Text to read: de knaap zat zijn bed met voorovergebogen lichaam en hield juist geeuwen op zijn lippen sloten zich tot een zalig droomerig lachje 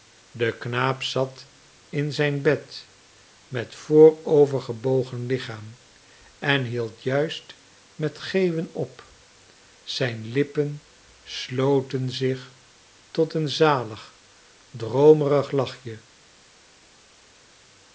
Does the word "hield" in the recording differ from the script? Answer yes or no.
no